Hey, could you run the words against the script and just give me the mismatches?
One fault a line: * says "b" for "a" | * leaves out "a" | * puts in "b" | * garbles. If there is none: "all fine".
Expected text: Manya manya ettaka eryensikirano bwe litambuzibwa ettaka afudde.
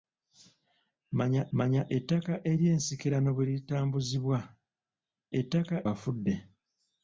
all fine